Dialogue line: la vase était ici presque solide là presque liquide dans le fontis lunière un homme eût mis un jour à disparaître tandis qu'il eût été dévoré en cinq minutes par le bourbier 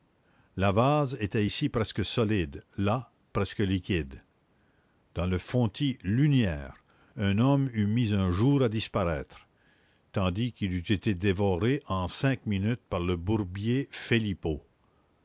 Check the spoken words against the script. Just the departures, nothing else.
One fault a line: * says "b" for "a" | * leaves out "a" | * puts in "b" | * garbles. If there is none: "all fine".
all fine